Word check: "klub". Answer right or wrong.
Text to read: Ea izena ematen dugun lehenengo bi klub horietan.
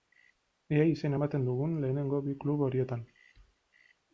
right